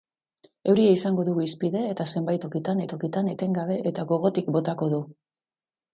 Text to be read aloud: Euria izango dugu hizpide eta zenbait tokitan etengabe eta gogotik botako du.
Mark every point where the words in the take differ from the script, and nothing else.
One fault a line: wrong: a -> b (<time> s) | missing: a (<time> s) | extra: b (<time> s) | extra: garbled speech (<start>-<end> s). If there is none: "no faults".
extra: tokitan (2.9 s)